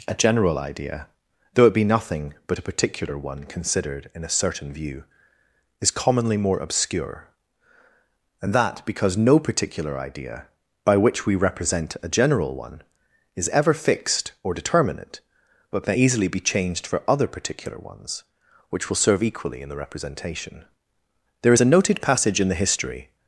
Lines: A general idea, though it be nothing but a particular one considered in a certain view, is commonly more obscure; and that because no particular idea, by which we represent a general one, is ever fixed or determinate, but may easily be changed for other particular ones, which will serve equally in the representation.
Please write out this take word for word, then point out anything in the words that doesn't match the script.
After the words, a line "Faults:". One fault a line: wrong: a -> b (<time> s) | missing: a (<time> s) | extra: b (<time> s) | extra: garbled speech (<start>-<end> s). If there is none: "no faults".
A general idea, though it be nothing but a particular one considered in a certain view, is commonly more obscure; and that because no particular idea, by which we represent a general one, is ever fixed or determinate, but may easily be changed for other particular ones, which will serve equally in the representation. There is a noted passage in the history
Faults:
extra: There is a noted passage in the history (21.4 s)